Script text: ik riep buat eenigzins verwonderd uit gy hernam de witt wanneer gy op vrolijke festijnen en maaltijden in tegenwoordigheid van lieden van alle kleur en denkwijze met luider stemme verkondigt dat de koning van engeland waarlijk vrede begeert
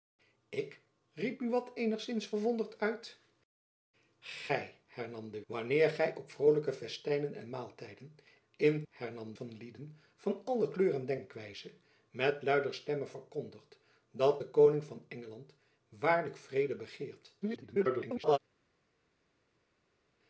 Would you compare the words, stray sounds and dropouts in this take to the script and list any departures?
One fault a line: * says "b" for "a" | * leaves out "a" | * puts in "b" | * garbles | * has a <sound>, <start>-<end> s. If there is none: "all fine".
* leaves out "witt"
* says "hernam" for "tegenwoordigheid"
* garbles